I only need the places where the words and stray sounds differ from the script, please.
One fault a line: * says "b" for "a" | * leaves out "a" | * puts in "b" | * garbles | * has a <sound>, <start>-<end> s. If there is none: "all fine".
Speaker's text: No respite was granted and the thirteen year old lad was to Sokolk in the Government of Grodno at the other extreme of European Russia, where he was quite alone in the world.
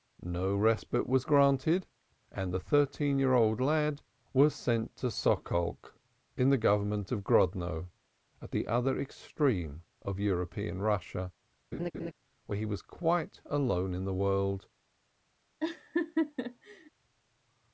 * puts in "sent"
* has a laugh, 11.7-12.1 s
* has a laugh, 15.6-16.9 s